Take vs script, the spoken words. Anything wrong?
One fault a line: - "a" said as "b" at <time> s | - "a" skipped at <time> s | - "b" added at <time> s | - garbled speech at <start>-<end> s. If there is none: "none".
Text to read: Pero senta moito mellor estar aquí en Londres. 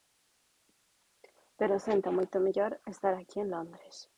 none